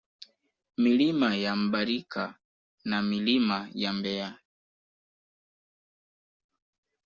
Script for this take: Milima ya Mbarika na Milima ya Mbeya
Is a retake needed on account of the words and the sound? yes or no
no